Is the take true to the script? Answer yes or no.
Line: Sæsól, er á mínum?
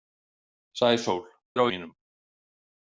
yes